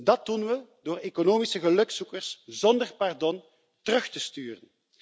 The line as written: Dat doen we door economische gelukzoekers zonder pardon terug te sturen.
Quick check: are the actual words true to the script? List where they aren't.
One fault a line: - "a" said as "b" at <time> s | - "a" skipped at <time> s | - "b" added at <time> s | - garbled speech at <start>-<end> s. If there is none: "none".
none